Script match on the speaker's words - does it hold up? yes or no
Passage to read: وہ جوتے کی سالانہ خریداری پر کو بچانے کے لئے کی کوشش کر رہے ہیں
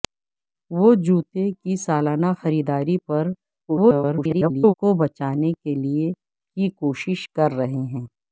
no